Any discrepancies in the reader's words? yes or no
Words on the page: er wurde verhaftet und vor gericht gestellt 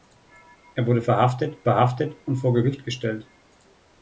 yes